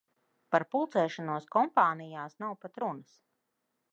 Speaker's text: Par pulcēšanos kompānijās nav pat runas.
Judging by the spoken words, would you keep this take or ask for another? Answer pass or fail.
pass